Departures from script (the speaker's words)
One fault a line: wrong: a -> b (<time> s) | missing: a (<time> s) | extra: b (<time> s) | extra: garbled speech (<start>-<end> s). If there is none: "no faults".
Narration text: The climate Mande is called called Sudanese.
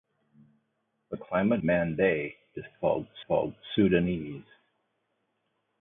no faults